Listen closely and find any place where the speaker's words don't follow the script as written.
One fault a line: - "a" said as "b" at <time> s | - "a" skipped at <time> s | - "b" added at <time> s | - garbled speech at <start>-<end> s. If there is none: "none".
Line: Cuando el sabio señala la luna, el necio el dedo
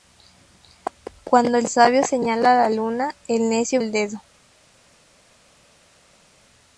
none